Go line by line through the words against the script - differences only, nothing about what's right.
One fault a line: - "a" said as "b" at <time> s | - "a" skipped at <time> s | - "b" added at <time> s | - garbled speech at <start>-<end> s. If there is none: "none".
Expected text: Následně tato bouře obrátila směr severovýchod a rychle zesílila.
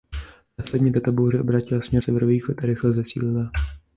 none